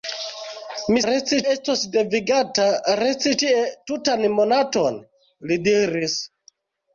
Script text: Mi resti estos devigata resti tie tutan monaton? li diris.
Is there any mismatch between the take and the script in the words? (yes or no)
no